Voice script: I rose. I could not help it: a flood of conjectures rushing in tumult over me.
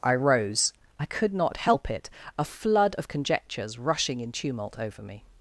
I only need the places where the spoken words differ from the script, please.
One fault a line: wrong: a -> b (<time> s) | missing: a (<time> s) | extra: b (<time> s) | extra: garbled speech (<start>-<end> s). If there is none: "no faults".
no faults